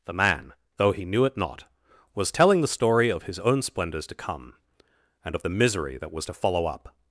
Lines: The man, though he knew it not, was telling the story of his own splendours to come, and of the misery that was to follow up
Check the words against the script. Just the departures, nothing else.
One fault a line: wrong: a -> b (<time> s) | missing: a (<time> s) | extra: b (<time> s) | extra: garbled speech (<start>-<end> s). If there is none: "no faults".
no faults